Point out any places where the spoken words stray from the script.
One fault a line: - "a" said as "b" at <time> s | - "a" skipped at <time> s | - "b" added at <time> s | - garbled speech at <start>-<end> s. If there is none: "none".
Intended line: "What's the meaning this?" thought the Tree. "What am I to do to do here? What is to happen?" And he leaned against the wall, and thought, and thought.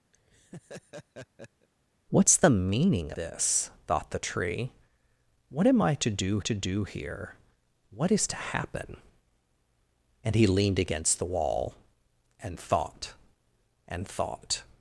none